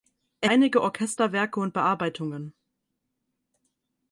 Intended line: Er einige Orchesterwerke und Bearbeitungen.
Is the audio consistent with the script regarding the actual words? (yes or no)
yes